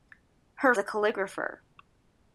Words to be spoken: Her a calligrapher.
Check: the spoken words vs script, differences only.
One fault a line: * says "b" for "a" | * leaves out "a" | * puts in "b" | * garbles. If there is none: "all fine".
all fine